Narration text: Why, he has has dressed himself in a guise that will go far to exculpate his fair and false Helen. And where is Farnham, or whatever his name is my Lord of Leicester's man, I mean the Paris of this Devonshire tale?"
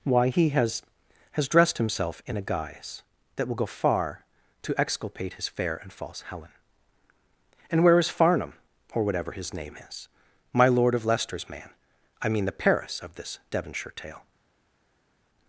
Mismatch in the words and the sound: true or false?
false